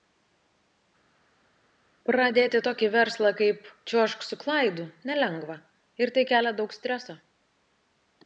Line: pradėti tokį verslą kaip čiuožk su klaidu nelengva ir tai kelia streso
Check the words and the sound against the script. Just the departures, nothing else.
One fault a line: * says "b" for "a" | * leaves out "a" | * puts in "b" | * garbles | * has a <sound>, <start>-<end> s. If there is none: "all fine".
* puts in "daug"